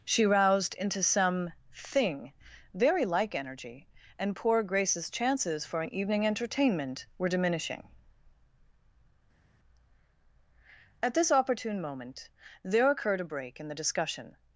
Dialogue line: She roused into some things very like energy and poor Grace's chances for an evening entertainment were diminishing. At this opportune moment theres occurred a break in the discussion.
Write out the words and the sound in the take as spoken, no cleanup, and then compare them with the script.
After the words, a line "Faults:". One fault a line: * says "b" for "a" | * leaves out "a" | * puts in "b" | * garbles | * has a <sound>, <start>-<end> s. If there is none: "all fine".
She roused into some thing very like energy and poor Grace's chances for an evening entertainment were diminishing. At this opportune moment there occurred a break in the discussion.
Faults:
* says "thing" for "things"
* says "there" for "theres"